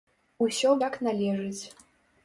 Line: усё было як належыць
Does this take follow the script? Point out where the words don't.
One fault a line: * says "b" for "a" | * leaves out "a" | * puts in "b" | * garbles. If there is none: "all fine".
* leaves out "было"